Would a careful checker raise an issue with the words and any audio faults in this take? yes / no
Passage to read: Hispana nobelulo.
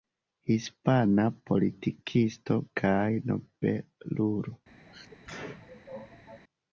yes